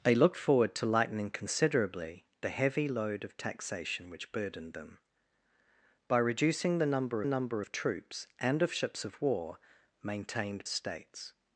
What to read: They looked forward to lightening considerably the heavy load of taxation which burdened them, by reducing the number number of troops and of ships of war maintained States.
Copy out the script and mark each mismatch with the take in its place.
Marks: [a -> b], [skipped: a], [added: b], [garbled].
They looked forward to lightening considerably the heavy load of taxation which burdened them, by reducing the number number of troops and of ships of war maintained States.